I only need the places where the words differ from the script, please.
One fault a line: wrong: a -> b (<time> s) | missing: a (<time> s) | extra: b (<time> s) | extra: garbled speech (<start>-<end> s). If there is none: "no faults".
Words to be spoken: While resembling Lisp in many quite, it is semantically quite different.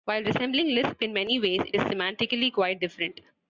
wrong: quite -> ways (1.4 s)